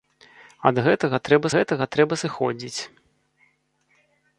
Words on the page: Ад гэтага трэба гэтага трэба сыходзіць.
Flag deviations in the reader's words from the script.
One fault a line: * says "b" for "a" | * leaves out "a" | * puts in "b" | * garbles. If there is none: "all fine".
all fine